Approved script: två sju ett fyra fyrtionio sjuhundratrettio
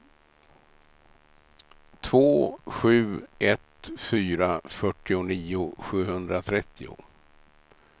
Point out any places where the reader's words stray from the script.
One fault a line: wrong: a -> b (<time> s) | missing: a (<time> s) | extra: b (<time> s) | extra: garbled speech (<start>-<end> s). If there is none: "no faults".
no faults